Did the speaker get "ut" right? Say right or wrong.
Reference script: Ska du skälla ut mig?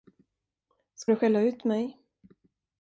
right